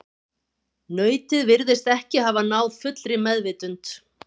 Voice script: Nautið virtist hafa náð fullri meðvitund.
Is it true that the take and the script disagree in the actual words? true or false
true